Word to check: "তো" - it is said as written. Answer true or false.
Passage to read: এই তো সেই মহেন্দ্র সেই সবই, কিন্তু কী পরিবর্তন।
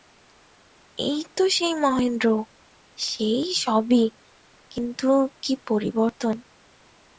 true